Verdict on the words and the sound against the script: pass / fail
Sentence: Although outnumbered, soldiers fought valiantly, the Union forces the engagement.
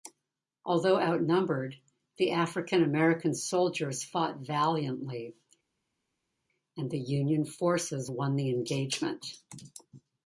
fail